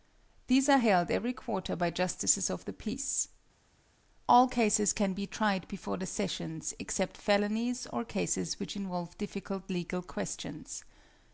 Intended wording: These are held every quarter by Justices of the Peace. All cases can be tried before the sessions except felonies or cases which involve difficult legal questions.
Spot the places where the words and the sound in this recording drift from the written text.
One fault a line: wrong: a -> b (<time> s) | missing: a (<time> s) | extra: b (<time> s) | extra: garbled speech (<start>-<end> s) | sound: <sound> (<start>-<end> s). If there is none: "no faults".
no faults